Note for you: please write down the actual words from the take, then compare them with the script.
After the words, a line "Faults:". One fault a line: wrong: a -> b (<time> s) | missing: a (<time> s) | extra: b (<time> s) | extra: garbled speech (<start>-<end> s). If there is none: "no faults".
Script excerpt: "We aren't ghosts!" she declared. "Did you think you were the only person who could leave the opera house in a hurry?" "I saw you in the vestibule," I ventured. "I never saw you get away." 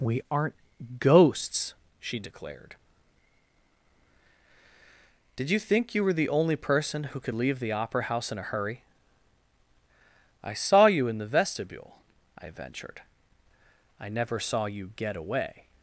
"We aren't ghosts!" she declared. "Did you think you were the only person who could leave the opera house in a hurry?" "I saw you in the vestibule," I ventured. "I never saw you get away."
Faults:
no faults